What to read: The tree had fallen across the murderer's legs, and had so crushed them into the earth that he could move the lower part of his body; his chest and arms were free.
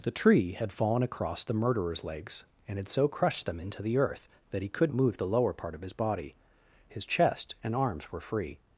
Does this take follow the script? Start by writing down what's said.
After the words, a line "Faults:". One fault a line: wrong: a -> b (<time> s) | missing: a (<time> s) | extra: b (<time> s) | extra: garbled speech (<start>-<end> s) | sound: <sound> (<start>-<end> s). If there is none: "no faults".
The tree had fallen across the murderer's legs, and had so crushed them into the earth that he could move the lower part of his body; his chest and arms were free.
Faults:
no faults